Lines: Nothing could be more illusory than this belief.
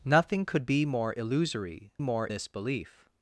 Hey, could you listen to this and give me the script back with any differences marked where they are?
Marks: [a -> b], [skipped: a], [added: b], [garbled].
Nothing could be more illusory [than -> more] this belief.